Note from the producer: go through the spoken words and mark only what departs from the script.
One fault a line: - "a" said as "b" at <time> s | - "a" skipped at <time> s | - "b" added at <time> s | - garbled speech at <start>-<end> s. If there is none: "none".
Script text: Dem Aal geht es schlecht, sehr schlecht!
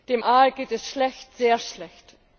none